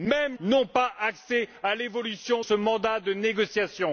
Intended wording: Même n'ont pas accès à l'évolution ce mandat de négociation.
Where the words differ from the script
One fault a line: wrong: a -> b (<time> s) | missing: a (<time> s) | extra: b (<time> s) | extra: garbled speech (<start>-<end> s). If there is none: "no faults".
no faults